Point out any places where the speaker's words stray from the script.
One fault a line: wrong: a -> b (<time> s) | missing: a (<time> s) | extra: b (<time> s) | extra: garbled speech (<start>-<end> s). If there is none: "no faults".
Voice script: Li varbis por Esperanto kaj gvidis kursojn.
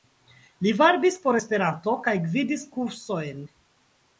no faults